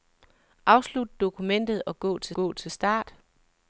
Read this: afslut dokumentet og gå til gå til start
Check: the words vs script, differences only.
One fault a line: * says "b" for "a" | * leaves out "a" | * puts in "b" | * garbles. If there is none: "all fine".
all fine